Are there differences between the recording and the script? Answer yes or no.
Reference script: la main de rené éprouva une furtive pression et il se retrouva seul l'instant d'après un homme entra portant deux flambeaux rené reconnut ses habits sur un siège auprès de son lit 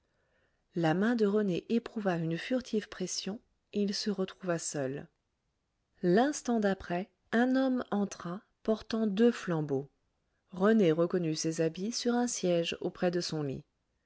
no